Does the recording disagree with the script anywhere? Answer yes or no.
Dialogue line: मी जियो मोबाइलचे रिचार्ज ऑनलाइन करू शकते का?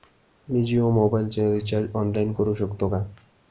no